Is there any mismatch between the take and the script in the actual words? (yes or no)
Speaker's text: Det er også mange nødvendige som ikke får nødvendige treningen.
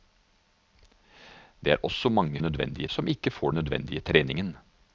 no